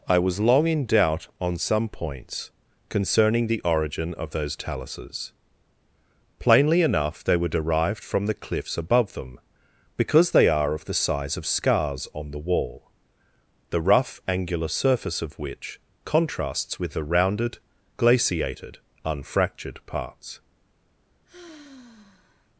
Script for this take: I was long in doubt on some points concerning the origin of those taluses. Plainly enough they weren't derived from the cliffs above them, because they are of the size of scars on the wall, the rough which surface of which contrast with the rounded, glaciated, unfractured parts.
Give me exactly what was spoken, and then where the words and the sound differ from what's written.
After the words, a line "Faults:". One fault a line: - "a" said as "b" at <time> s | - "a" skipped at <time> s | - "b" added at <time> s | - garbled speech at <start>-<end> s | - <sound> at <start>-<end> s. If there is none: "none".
I was long in doubt on some points concerning the origin of those taluses. Plainly enough they were derived from the cliffs above them, because they are of the size of scars on the wall, the rough angular surface of which contrasts with the rounded, glaciated, unfractured parts.
Faults:
- "weren't" said as "were" at 7.4 s
- "which" said as "angular" at 14.3 s
- "contrast" said as "contrasts" at 16.0 s
- sigh at 21.2-22.5 s